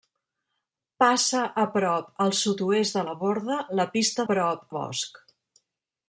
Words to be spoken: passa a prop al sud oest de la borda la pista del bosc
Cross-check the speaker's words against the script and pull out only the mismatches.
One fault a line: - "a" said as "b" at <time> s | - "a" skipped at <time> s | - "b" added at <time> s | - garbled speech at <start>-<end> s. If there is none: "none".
- "del" said as "prop" at 4.3 s